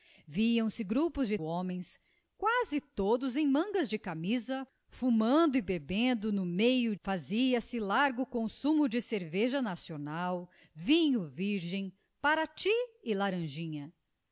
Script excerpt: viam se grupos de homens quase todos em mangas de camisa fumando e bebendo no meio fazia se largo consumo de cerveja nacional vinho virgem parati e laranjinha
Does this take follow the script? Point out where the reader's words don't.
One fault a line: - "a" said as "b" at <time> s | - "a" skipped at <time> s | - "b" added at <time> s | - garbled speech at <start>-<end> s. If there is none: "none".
none